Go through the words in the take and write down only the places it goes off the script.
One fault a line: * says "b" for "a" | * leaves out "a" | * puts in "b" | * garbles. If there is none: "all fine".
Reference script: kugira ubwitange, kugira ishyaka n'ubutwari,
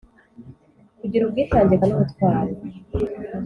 * leaves out "kugira ishyaka"